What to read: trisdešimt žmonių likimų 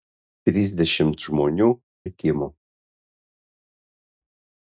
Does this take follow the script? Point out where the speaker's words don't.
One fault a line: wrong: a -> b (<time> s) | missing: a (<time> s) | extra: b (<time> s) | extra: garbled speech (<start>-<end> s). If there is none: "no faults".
no faults